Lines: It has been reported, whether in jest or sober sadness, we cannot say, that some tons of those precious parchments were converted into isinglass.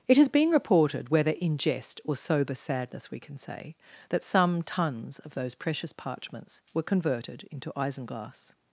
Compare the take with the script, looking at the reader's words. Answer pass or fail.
fail